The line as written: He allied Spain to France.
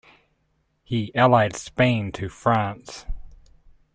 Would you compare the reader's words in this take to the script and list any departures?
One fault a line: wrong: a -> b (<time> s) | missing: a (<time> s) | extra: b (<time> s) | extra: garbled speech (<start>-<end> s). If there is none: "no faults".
no faults